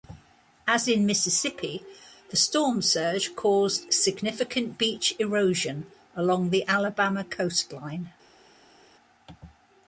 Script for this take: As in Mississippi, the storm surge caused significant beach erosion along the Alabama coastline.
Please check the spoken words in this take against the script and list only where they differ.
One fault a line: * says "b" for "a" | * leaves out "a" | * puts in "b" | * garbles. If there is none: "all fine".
all fine